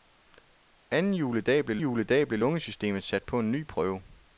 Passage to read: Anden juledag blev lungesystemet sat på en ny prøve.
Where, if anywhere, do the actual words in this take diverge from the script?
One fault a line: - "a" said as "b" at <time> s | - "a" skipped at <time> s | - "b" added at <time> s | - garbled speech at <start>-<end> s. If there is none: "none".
- "juledag blev" added at 1.8 s